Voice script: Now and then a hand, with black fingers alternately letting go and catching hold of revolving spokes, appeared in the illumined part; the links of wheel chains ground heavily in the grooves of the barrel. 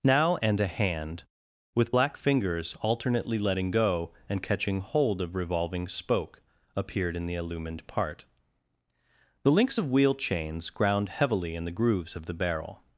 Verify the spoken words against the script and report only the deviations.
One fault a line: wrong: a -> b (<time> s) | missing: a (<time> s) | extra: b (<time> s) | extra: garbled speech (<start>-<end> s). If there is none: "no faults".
missing: then (0.6 s)
wrong: spokes -> spoke (5.9 s)